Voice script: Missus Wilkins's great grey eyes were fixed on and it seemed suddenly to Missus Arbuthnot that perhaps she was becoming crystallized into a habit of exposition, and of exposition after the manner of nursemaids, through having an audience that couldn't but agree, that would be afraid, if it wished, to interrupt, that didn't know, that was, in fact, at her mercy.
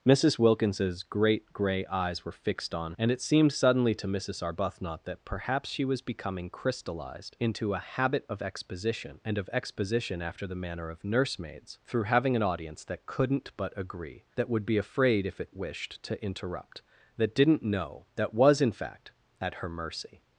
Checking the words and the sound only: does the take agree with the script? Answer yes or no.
yes